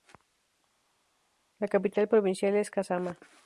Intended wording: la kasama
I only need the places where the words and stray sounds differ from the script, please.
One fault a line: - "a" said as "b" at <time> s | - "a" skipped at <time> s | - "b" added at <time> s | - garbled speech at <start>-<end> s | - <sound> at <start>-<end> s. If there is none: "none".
- "capital provincial es" added at 1.7 s